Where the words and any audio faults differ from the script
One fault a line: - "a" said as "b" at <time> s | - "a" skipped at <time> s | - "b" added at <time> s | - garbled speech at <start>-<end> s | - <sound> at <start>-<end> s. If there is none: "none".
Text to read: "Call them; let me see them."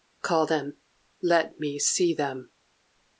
none